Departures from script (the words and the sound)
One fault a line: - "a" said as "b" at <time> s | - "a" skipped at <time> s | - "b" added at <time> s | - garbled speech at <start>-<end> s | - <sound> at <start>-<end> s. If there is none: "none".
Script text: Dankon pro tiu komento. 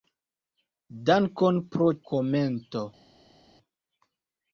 - "tiu" skipped at 1.9 s